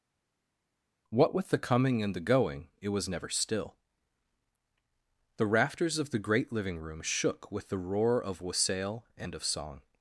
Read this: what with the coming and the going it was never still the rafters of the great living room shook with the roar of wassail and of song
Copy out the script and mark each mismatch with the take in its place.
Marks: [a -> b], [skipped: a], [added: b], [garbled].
what with the coming and the going it was never still the rafters of the great living room shook with the roar of wassail and of song